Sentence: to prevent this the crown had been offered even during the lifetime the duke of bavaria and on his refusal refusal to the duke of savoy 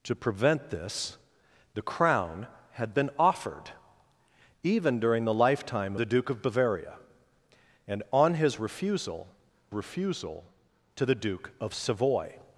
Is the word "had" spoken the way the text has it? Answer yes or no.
yes